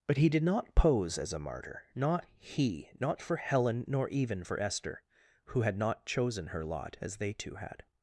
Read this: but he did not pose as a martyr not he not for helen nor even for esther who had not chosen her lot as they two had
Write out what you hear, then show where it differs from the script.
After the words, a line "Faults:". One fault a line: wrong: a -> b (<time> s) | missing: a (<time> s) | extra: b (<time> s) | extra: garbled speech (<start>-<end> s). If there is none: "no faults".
but he did not pose as a martyr not he not for helen nor even for esther who had not chosen her lot as they two had
Faults:
no faults